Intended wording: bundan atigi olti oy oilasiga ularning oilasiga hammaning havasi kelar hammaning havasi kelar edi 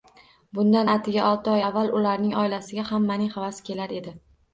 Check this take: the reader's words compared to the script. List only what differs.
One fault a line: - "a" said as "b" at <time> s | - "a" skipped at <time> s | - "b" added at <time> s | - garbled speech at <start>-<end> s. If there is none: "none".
- "oilasiga" said as "avval" at 1.7 s
- "hammaning havasi kelar" skipped at 4.0 s